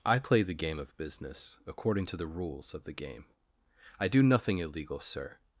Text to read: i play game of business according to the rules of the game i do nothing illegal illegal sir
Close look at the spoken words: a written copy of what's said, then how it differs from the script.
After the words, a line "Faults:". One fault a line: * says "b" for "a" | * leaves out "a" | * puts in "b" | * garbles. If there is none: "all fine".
i play the game of business according to the rules of the game i do nothing illegal sir
Faults:
* puts in "the"
* leaves out "illegal"